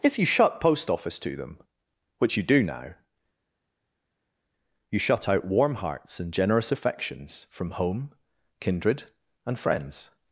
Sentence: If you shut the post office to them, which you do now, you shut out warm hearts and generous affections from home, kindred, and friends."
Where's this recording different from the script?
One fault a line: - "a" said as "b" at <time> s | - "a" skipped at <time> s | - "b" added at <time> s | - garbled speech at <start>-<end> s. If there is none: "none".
- "the" skipped at 0.6 s